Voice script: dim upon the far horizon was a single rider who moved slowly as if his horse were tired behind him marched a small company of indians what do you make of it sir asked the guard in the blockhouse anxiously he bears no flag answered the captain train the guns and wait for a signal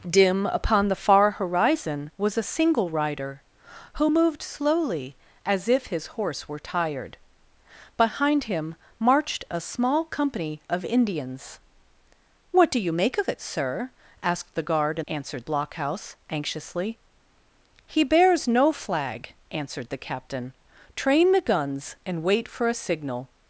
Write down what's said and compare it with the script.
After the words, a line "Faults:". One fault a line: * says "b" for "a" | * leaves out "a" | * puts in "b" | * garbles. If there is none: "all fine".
dim upon the far horizon was a single rider who moved slowly as if his horse were tired behind him marched a small company of indians what do you make of it sir asked the guard in answered blockhouse anxiously he bears no flag answered the captain train the guns and wait for a signal
Faults:
* says "answered" for "the"